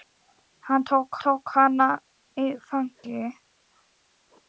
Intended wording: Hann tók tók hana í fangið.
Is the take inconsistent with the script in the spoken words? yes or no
no